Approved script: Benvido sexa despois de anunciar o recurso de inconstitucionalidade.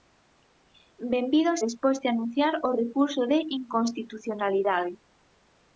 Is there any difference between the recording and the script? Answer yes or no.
yes